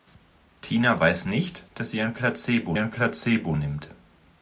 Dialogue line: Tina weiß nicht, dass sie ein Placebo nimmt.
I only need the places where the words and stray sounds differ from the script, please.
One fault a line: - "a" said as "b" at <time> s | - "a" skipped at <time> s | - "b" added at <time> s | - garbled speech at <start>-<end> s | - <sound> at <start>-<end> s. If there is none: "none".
- "ein Placebo" added at 2.8 s